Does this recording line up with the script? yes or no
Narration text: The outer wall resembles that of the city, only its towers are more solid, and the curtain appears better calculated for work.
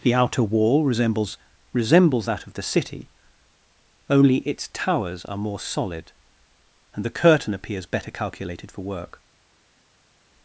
no